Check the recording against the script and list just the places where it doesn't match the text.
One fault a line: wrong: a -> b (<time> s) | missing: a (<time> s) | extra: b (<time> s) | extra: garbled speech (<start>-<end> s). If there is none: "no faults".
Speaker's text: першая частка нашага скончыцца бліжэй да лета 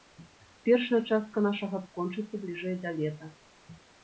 no faults